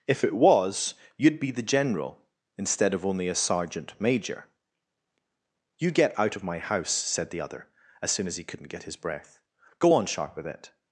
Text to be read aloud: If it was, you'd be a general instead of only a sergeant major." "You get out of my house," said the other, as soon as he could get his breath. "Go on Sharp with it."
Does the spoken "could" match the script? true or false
false